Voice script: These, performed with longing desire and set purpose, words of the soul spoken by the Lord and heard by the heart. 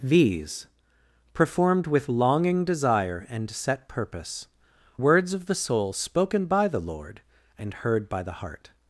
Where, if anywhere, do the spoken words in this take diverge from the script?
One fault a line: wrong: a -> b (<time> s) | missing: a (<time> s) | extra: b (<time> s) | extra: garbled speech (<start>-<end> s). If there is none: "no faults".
no faults